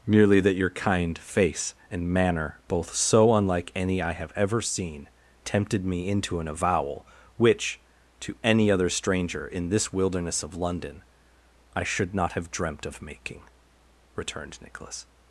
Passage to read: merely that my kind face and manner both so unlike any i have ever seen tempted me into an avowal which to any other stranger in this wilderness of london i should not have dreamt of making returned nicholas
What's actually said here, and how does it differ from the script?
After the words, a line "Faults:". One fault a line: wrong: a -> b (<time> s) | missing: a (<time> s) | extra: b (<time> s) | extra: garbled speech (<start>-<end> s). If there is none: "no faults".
merely that your kind face and manner both so unlike any i have ever seen tempted me into an avowal which to any other stranger in this wilderness of london i should not have dreamt of making returned nicholas
Faults:
wrong: my -> your (0.6 s)